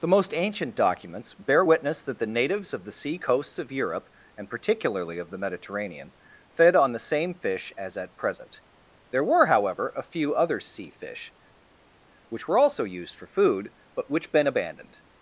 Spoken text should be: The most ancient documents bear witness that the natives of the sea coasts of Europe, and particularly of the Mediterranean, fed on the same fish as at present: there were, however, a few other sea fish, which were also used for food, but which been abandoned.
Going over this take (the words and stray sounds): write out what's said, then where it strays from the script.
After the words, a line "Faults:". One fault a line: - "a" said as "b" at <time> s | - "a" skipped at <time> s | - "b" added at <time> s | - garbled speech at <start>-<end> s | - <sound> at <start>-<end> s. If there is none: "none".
The most ancient documents bear witness that the natives of the sea coasts of Europe, and particularly of the Mediterranean, fed on the same fish as at present: there were, however, a few other sea fish, which were also used for food, but which been abandoned.
Faults:
none